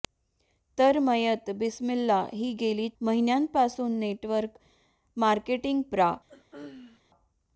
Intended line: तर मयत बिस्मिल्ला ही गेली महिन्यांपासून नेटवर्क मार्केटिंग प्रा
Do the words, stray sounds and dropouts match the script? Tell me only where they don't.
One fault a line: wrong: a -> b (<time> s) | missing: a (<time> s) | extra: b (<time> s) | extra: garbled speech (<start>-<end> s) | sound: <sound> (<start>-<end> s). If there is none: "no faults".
sound: throat clearing (6.3-7.0 s)